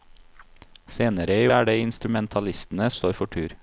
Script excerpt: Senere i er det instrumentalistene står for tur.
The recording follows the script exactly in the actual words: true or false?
true